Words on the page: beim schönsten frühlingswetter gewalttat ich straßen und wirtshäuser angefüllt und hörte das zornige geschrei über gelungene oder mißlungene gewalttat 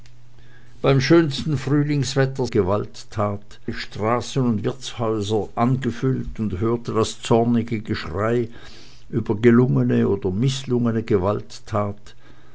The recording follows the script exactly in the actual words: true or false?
true